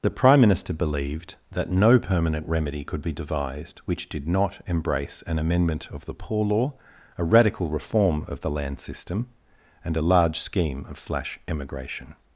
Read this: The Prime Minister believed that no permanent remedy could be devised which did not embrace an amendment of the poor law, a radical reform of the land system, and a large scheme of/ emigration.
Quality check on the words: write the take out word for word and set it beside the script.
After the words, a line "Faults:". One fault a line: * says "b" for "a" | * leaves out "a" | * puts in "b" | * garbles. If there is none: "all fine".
The Prime Minister believed that no permanent remedy could be devised which did not embrace an amendment of the poor law, a radical reform of the land system, and a large scheme of/ slash emigration.
Faults:
* puts in "slash"